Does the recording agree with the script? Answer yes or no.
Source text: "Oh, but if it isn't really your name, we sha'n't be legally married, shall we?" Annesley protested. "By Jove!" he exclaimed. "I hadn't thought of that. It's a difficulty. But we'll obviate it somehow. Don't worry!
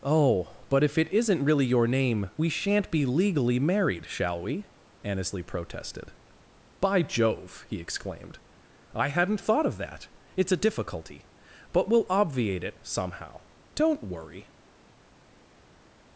yes